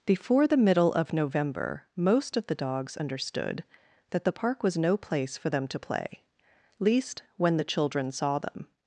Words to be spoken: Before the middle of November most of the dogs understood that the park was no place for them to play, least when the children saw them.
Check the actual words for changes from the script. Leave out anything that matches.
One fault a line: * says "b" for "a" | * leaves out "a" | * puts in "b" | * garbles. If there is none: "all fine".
all fine